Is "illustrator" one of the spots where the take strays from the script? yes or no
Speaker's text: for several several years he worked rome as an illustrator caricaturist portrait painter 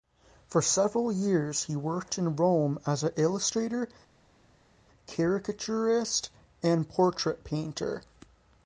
no